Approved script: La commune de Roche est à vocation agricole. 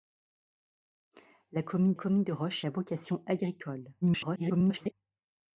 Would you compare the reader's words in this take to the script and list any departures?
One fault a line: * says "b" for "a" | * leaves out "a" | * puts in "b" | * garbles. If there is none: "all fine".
* puts in "commune"
* leaves out "est"
* garbles